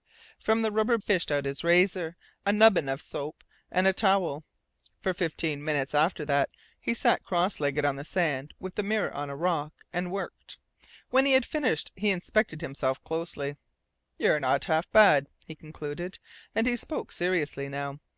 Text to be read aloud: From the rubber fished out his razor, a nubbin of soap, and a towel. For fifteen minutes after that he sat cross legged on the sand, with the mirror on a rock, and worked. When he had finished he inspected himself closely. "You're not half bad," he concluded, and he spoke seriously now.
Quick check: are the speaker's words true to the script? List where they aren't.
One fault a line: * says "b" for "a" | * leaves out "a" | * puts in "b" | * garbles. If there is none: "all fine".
all fine